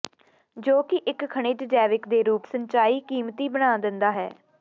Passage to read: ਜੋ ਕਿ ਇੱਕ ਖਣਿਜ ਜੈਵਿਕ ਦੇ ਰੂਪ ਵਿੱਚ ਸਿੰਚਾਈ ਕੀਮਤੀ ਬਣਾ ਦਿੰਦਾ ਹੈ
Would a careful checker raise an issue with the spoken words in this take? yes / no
yes